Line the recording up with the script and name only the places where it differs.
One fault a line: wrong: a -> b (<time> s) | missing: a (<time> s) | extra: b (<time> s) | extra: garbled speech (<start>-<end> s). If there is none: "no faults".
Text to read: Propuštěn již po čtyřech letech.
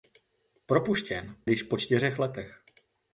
no faults